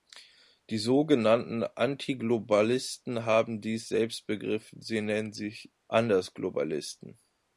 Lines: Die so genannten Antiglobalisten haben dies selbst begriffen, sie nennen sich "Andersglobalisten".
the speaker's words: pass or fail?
pass